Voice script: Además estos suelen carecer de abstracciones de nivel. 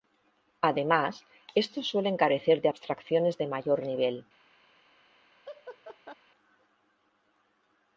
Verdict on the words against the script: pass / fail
fail